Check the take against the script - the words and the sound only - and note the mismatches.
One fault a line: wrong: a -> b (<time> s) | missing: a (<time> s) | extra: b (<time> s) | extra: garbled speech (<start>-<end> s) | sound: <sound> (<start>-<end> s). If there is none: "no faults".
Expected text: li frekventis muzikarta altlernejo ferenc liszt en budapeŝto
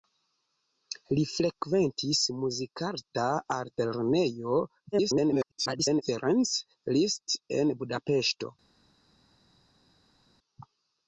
extra: garbled speech (4.9-6.0 s)